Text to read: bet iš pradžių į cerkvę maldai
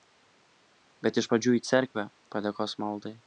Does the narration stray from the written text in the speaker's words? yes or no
yes